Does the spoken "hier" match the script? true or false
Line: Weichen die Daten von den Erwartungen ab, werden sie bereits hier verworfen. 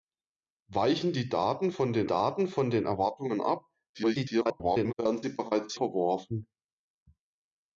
false